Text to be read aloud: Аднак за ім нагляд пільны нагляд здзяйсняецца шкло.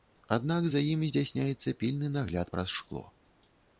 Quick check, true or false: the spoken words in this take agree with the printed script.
false